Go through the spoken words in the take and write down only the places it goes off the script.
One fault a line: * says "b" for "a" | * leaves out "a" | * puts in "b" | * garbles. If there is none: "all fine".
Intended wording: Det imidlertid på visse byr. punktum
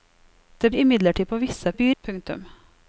all fine